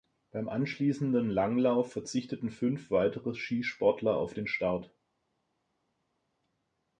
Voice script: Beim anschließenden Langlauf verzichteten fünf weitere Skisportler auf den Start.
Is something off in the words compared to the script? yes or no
no